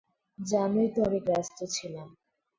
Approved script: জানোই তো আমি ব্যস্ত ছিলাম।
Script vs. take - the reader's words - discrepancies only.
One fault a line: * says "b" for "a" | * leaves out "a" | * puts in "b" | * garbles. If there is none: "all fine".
all fine